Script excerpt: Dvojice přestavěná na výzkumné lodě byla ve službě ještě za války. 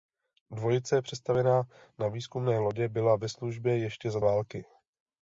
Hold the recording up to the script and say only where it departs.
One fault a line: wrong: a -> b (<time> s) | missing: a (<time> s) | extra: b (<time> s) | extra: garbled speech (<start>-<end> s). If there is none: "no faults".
no faults